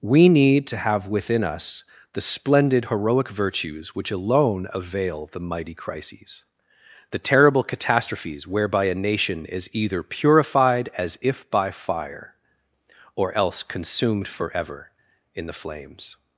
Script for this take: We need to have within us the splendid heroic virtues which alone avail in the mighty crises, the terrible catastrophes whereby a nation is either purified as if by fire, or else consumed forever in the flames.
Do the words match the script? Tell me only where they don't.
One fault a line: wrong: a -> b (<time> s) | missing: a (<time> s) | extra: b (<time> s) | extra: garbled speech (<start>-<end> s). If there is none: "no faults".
missing: in (5.3 s)